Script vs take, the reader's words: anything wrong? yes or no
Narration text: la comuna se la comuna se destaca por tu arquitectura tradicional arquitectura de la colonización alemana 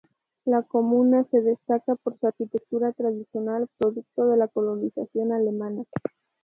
yes